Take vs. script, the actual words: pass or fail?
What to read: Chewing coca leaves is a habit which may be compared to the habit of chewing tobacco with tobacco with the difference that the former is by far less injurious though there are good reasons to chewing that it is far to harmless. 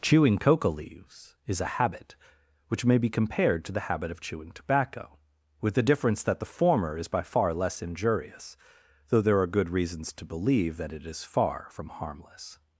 fail